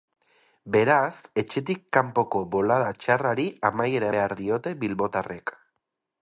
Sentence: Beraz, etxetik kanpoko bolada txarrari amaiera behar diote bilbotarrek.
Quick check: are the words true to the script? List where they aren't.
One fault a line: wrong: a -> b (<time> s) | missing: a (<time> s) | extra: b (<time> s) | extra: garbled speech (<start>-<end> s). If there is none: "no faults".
no faults